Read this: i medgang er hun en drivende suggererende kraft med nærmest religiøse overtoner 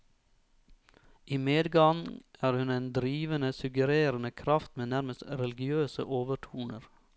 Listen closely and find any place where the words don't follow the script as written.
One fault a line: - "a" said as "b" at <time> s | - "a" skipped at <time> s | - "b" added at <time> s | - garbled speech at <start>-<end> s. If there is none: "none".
none